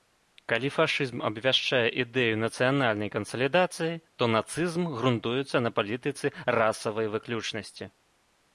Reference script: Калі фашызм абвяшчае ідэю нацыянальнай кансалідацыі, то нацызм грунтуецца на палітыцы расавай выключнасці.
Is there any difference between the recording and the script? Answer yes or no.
no